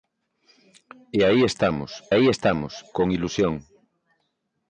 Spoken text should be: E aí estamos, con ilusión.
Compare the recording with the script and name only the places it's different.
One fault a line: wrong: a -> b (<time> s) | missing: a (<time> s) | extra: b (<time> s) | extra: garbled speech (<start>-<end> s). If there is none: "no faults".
extra: aí estamos (2.1 s)